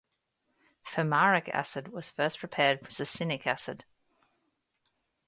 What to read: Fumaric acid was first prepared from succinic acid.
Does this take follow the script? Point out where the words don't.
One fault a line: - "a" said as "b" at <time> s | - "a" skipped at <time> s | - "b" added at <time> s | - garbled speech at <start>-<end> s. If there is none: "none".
- "from" skipped at 2.9 s